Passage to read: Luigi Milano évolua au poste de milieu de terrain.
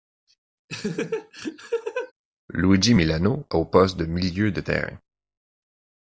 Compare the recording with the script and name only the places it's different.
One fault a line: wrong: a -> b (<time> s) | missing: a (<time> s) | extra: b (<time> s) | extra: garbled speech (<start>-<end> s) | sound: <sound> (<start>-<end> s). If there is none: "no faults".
sound: laugh (0.7-2.1 s)
missing: évolua (3.4 s)